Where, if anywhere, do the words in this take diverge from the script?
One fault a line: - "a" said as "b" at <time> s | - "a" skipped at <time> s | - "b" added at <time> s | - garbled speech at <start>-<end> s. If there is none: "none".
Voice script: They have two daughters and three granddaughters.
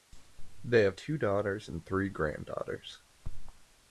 none